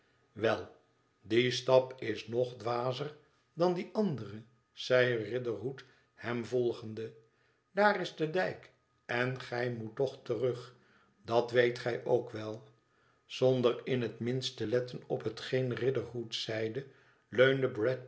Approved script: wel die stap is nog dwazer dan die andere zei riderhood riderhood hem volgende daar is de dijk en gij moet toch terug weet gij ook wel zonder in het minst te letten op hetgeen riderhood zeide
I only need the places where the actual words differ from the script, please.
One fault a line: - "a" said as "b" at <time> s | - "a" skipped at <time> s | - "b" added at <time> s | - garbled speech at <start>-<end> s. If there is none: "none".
- "riderhood" skipped at 5.8 s
- "dat" added at 11.2 s